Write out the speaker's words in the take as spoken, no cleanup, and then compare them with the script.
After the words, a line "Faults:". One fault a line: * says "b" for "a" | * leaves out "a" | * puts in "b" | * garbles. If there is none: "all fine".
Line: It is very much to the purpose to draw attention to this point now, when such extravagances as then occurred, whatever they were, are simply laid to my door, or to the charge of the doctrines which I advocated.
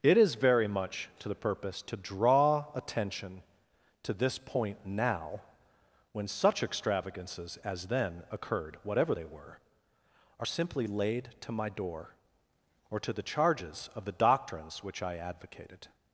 It is very much to the purpose to draw attention to this point now, when such extravagances as then occurred, whatever they were, are simply laid to my door, or to the charges of the doctrines which I advocated.
Faults:
* says "charges" for "charge"